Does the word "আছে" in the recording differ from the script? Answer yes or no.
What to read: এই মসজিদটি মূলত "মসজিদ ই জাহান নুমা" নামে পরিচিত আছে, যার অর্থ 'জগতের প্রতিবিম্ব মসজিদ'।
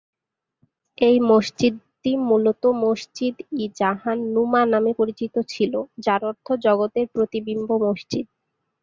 yes